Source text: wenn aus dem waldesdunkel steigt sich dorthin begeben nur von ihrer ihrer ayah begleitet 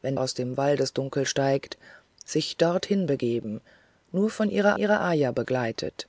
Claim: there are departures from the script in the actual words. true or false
false